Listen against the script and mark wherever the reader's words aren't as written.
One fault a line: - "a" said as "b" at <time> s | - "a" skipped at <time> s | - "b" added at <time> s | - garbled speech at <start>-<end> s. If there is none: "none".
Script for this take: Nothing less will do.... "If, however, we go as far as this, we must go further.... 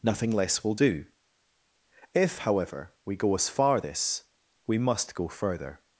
- "as" skipped at 3.8 s